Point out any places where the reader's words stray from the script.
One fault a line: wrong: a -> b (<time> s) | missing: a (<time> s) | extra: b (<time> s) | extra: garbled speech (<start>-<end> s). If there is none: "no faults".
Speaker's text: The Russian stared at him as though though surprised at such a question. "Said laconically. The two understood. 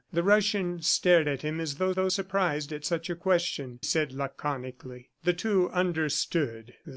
no faults